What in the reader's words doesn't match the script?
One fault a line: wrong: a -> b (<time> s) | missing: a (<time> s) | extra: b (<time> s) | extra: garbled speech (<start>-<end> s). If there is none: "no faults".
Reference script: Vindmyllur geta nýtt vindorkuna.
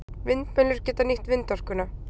no faults